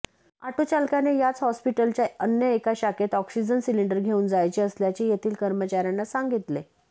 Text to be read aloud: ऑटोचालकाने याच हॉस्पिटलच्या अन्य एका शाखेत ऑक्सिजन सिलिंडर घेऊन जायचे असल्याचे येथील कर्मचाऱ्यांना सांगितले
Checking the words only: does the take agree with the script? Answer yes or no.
yes